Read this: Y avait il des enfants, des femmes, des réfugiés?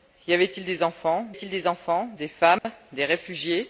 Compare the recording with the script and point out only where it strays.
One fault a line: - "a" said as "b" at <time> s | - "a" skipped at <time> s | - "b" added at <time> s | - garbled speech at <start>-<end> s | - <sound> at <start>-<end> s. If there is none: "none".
- "il des enfants" added at 1.3 s
- dropout at 2.6-2.6 s